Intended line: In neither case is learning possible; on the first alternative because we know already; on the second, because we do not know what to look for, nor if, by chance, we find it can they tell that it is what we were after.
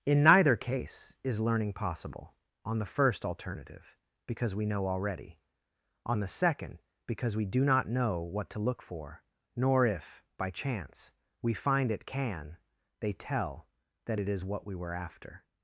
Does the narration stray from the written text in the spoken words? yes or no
no